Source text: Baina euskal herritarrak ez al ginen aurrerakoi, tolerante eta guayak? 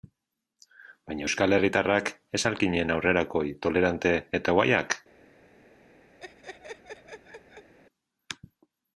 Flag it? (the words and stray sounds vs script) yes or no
yes